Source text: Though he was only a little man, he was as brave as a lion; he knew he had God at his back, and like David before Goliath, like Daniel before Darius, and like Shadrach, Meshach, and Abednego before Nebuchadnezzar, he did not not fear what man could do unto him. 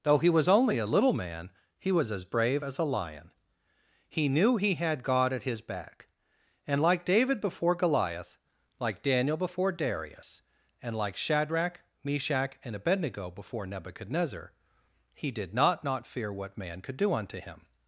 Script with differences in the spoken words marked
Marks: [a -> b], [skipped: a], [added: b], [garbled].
Though he was only a little man, he was as brave as a lion; he knew he had God at his back, and like David before Goliath, like Daniel before Darius, and like Shadrach, Meshach, and Abednego before Nebuchadnezzar, he did not not fear what man could do unto him.